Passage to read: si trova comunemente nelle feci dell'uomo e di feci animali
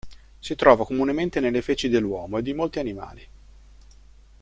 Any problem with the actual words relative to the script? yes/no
yes